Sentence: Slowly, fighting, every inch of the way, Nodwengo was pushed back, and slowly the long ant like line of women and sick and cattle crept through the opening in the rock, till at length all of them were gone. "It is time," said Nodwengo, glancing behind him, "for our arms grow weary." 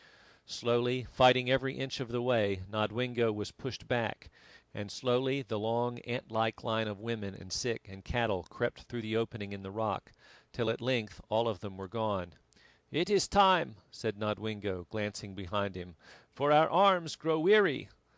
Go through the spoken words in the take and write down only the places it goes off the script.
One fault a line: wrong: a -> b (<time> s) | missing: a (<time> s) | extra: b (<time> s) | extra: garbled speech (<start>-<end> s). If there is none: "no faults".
no faults